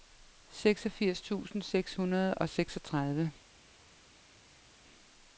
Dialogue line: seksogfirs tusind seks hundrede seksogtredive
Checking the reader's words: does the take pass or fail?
fail